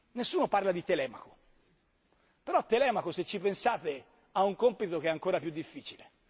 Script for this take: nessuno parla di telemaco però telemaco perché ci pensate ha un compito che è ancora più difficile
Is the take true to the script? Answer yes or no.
no